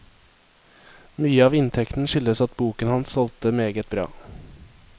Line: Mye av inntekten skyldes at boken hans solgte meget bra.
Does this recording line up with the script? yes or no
yes